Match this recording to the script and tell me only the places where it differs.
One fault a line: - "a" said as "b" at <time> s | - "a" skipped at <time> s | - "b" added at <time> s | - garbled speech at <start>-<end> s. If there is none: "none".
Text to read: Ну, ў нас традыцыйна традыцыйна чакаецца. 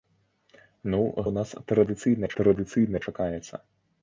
none